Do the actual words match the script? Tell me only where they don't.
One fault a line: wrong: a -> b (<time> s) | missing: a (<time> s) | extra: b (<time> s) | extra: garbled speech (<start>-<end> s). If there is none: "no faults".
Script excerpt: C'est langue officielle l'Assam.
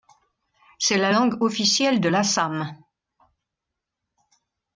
extra: la (1.0 s)
extra: de (2.0 s)